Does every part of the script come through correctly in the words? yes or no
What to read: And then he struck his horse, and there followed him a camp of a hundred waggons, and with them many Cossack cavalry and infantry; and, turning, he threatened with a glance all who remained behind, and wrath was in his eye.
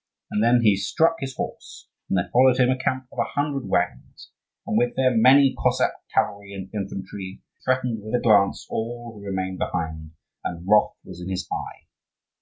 no